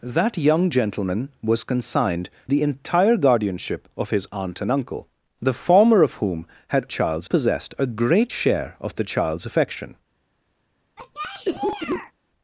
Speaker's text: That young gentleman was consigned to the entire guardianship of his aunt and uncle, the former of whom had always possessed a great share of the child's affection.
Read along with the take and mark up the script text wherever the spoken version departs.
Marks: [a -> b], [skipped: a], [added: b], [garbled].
That young gentleman was consigned [skipped: to] the entire guardianship of his aunt and uncle, the former of whom had [always -> child's] possessed a great share of the child's affection.